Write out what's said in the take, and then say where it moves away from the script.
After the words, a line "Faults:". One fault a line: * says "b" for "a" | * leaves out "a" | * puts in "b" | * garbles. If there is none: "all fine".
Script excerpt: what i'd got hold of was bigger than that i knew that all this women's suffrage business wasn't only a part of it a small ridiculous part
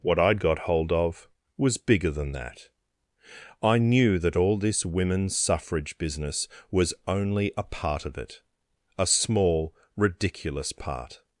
what i'd got hold of was bigger than that i knew that all this women's suffrage business was only a part of it a small ridiculous part
Faults:
* says "was" for "wasn't"